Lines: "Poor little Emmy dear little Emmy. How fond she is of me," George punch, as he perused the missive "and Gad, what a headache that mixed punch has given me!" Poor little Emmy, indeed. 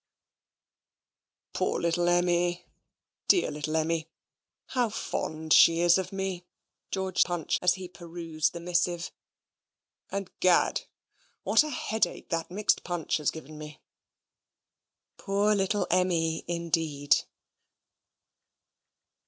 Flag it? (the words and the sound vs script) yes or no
no